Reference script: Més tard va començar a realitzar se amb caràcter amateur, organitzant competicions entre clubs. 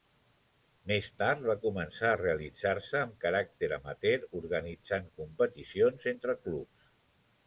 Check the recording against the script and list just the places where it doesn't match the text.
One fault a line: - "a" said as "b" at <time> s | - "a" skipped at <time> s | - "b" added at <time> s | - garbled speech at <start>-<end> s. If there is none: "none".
none